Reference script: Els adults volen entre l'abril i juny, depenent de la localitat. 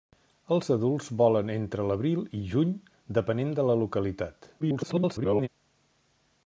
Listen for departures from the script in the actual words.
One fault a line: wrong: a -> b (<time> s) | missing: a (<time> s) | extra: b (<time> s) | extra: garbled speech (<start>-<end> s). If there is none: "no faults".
extra: garbled speech (4.6-5.5 s)